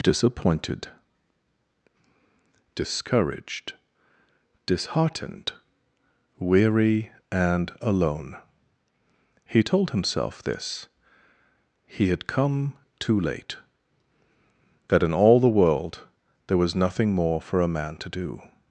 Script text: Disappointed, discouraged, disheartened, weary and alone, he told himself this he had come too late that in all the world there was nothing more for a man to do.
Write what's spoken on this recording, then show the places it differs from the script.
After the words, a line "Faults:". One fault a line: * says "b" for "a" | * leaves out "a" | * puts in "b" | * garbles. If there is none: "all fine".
Disappointed, discouraged, disheartened, weary and alone, he told himself this he had come too late that in all the world there was nothing more for a man to do.
Faults:
all fine